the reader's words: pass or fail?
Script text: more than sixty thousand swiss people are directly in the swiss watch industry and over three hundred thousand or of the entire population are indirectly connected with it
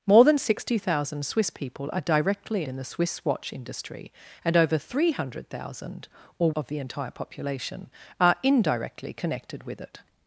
pass